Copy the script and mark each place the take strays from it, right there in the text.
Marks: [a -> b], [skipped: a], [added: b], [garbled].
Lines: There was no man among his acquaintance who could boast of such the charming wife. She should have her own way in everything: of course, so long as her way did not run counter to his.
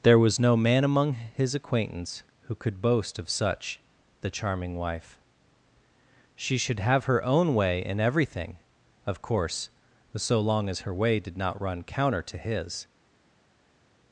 There was no man among his acquaintance who could boast of such the charming wife. She should have her own way in everything: of course, so long as her way did not run counter to his.